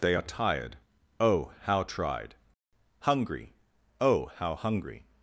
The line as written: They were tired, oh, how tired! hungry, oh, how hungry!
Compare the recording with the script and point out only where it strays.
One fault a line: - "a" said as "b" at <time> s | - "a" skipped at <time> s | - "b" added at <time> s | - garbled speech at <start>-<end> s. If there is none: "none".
- "were" said as "are" at 0.1 s
- "tired" said as "tried" at 1.8 s